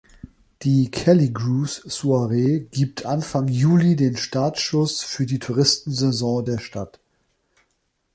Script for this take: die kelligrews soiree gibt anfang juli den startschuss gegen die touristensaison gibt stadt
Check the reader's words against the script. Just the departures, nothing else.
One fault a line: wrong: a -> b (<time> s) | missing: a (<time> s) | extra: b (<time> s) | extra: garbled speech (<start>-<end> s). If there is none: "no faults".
wrong: gegen -> für (5.0 s)
wrong: gibt -> der (6.4 s)